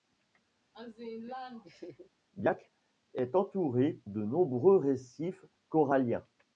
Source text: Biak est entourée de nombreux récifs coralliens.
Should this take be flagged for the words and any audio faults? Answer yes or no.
yes